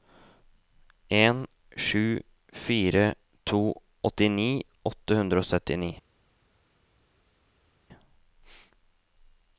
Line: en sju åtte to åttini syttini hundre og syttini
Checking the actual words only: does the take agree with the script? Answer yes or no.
no